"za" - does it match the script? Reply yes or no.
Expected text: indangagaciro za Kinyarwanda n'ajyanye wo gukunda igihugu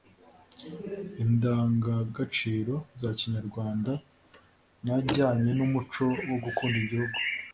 yes